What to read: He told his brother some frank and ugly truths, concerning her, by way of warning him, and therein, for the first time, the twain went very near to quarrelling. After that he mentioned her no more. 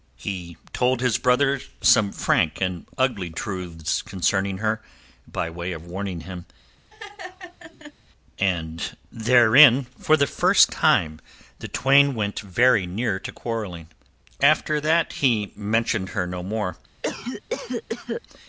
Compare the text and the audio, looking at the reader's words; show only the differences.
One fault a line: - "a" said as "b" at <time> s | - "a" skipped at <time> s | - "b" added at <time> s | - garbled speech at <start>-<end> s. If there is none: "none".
none